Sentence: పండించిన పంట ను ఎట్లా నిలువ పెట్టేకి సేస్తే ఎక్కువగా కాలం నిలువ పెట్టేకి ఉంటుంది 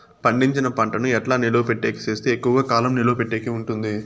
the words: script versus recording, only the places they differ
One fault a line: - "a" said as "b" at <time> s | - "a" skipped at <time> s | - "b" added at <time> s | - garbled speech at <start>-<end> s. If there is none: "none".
none